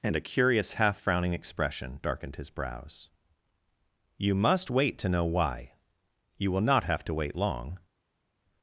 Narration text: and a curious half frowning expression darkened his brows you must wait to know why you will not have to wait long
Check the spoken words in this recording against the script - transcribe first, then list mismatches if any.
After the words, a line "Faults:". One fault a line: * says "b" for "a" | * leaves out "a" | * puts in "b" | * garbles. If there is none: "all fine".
and a curious half frowning expression darkened his brows you must wait to know why you will not have to wait long
Faults:
all fine